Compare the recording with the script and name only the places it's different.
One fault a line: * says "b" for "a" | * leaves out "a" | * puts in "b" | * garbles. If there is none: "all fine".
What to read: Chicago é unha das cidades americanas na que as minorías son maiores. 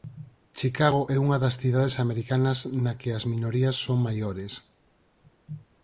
all fine